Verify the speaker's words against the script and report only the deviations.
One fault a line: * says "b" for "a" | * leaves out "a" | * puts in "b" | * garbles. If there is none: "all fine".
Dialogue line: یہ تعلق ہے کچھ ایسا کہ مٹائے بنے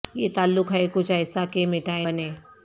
all fine